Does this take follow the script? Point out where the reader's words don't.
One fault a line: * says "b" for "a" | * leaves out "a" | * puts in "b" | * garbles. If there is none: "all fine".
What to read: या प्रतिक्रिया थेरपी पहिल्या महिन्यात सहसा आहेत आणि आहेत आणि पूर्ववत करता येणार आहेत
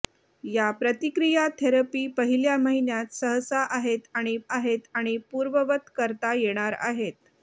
all fine